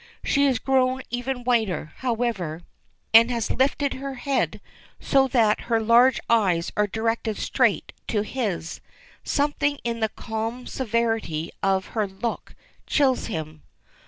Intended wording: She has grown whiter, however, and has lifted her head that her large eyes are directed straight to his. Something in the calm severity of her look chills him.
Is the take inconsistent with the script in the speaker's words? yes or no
yes